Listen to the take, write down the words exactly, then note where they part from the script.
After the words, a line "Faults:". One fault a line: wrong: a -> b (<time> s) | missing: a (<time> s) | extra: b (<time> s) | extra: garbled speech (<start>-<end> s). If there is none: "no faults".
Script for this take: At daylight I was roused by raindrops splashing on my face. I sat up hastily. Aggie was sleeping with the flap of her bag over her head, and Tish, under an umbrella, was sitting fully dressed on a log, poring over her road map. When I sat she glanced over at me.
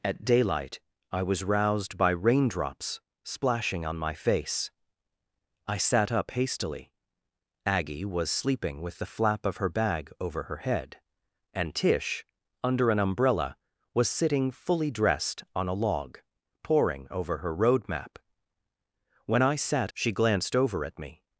At daylight I was roused by raindrops splashing on my face. I sat up hastily. Aggie was sleeping with the flap of her bag over her head, and Tish, under an umbrella, was sitting fully dressed on a log, poring over her road map. When I sat she glanced over at me.
Faults:
no faults